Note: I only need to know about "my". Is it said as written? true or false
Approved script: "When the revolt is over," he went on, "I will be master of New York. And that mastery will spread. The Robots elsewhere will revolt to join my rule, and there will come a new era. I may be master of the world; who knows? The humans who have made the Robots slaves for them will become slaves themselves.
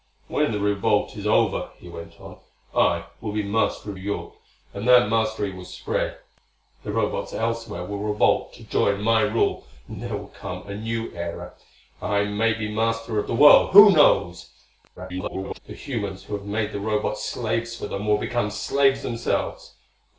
true